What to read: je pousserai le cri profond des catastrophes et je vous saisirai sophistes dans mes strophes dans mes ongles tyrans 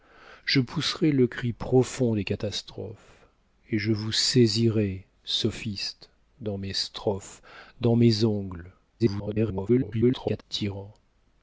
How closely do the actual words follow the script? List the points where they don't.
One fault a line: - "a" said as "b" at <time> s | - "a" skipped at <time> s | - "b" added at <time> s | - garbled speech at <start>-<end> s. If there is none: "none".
- garbled speech at 9.0-10.4 s